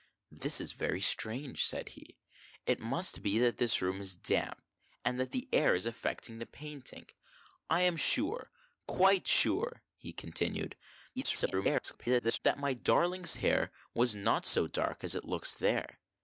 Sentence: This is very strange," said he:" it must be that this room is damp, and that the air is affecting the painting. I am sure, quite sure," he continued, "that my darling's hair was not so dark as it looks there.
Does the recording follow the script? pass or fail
fail